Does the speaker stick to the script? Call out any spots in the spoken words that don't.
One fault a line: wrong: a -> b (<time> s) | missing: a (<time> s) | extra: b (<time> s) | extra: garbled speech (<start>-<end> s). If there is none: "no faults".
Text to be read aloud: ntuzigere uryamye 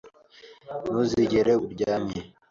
no faults